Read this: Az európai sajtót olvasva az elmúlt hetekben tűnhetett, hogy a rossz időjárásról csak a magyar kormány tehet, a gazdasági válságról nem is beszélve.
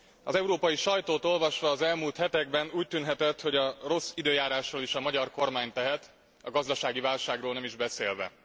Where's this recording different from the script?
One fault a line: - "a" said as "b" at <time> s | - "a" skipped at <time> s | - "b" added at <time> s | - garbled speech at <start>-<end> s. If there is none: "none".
- "úgy" added at 2.7 s
- "csak" said as "is" at 4.8 s